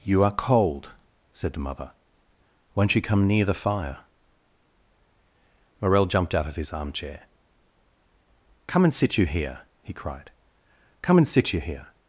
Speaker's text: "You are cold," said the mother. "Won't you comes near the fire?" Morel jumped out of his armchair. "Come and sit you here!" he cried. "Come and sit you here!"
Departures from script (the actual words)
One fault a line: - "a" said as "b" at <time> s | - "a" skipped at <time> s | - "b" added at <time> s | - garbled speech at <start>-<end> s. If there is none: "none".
- "comes" said as "come" at 3.0 s